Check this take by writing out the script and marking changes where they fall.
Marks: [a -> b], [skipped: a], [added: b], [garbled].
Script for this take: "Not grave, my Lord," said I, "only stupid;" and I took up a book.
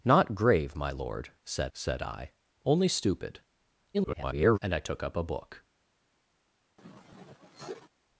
"Not grave, my Lord," said [added: said] I, "only stupid;" [garbled] and I took up a book.